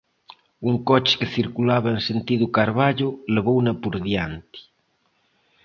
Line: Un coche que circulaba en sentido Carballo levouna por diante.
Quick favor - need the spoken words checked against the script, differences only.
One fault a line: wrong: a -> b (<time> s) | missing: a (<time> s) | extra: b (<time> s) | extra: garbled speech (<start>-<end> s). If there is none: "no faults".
no faults